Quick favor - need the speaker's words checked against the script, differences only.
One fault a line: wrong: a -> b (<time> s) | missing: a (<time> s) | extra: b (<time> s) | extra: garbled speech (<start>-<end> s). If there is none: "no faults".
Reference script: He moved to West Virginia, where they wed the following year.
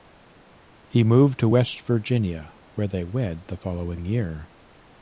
no faults